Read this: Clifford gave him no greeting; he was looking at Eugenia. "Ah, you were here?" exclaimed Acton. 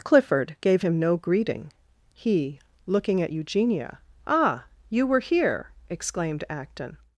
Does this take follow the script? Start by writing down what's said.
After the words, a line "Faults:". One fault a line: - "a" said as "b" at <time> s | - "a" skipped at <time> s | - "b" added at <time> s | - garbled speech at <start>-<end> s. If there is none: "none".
Clifford gave him no greeting; he looking at Eugenia. "Ah, you were here?" exclaimed Acton.
Faults:
- "was" skipped at 2.6 s